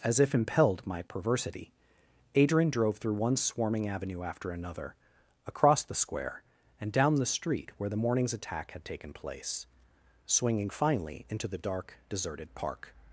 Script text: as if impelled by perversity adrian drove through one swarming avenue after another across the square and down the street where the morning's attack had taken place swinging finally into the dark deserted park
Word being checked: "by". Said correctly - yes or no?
no